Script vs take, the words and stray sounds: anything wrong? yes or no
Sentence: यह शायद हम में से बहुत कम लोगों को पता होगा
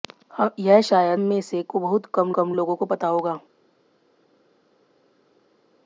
yes